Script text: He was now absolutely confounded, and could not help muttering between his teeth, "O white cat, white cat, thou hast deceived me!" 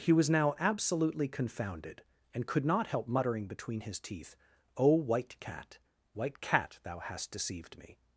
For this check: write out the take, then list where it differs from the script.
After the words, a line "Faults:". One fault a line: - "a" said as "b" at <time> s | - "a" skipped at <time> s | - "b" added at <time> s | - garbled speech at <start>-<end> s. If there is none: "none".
He was now absolutely confounded, and could not help muttering between his teeth, "O white cat, white cat, thou hast deceived me!"
Faults:
none